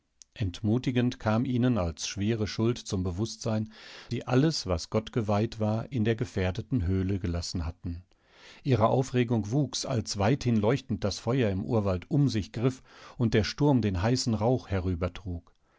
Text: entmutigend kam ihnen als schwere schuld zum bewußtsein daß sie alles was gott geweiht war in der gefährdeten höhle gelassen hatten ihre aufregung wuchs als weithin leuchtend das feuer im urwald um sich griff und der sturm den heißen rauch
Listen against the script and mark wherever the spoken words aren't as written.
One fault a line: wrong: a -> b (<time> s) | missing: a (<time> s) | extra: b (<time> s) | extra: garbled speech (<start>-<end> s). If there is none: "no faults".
missing: daß (3.7 s)